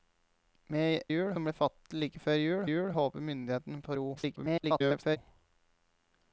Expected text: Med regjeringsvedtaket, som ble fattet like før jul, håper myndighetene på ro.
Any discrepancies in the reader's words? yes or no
yes